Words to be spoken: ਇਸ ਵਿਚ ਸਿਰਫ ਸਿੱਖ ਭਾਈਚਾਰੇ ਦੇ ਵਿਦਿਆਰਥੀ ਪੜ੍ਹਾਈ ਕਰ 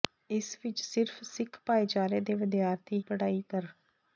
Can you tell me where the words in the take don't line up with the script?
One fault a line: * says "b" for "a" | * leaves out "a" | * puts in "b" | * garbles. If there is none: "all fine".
all fine